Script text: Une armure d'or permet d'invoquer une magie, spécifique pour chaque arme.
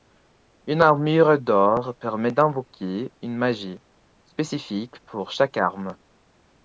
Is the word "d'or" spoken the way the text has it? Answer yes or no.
yes